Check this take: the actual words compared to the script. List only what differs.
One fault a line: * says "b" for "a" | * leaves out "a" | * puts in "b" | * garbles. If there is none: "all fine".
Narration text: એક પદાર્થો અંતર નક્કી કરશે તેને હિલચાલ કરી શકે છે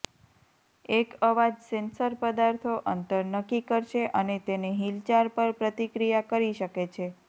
* puts in "અવાજ સેન્સર"
* puts in "અને"
* puts in "પર પ્રતિક્રિયા"